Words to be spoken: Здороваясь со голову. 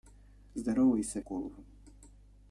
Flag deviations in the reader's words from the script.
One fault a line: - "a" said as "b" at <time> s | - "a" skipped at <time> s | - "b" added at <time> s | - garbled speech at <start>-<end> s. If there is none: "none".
none